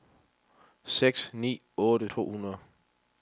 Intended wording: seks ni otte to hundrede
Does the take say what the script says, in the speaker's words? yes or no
yes